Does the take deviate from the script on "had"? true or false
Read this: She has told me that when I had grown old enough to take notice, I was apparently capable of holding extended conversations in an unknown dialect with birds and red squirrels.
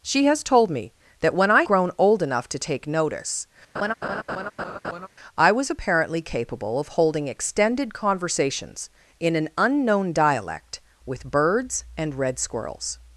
true